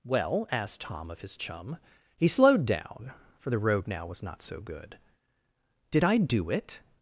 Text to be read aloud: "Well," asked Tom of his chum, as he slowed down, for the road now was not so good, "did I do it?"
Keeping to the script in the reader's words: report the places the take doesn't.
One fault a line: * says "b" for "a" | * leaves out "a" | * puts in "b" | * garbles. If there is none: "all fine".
* leaves out "as"